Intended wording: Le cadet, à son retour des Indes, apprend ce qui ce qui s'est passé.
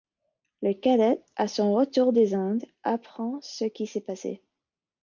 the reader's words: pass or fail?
fail